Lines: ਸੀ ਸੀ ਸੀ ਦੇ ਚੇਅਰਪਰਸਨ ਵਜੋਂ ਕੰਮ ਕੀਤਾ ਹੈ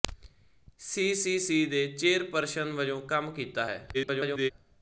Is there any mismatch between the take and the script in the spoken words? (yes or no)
yes